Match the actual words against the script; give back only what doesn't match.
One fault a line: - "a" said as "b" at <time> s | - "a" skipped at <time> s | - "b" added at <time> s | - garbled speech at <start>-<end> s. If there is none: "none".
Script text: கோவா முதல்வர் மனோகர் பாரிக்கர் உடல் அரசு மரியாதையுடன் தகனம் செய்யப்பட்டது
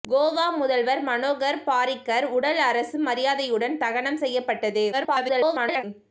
- garbled speech at 4.9-5.8 s